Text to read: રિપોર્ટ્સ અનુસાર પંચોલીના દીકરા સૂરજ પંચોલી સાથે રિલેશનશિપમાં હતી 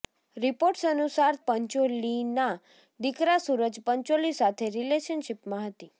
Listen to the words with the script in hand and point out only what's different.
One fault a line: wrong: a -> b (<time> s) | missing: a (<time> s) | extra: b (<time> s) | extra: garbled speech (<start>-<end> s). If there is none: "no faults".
no faults